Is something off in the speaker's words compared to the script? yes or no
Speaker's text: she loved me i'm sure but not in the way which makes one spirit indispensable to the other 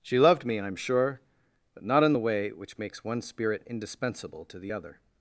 no